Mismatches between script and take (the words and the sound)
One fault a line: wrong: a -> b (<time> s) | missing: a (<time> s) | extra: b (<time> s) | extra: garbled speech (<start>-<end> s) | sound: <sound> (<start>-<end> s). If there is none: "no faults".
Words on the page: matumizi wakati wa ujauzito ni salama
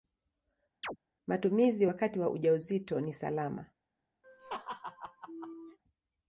sound: chirp (0.8-1.0 s)
sound: laugh (4.2-5.8 s)